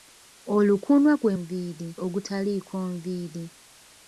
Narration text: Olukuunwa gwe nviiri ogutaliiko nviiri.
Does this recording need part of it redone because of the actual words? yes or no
no